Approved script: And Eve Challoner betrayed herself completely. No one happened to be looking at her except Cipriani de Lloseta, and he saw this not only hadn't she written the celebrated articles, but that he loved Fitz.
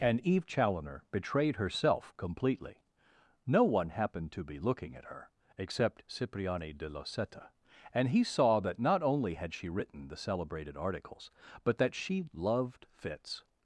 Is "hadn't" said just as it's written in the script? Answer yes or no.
no